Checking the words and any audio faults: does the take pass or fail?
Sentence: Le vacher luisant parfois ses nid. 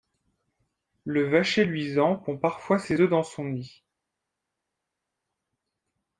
fail